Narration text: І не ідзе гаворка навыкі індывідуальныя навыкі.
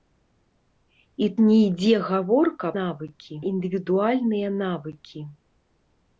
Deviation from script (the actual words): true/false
false